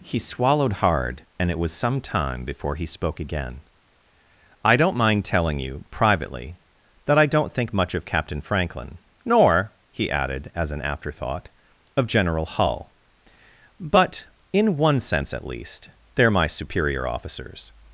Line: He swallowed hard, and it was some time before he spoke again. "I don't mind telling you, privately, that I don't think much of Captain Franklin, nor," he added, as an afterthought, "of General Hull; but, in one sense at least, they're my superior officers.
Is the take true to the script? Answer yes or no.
yes